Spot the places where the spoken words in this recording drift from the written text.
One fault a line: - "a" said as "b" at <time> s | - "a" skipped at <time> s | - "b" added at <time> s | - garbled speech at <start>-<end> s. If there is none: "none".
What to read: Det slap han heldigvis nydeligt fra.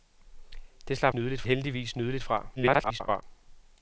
- "han" said as "nydeligt" at 1.1 s
- garbled speech at 2.6-3.2 s